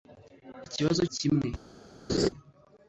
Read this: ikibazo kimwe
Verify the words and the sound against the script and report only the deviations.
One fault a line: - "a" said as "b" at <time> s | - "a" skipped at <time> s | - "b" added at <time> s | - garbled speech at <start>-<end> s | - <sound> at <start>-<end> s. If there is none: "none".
- laugh at 2.1-2.3 s